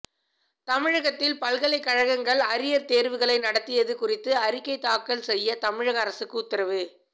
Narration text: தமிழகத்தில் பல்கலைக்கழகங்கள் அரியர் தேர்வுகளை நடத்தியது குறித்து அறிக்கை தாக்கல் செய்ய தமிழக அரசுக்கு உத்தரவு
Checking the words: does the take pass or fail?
pass